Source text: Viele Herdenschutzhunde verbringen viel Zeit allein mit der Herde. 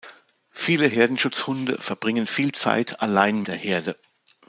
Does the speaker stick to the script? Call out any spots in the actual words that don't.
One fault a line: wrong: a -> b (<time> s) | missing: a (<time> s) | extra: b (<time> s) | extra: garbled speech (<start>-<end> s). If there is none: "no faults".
missing: mit (3.4 s)